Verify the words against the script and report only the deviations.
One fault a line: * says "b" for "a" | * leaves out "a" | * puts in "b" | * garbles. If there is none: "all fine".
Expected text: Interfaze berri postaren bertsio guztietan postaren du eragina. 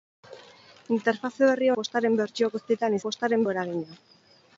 all fine